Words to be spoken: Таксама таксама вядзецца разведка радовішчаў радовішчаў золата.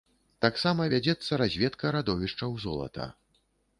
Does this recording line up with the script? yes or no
no